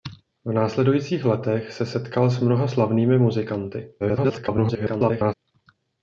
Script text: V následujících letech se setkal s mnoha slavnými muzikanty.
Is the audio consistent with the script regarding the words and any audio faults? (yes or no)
no